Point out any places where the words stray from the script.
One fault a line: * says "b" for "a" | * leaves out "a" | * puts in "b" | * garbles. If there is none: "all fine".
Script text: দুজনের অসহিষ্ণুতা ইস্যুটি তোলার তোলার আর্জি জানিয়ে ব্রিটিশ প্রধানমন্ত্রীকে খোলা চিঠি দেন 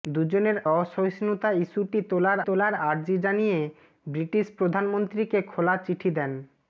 all fine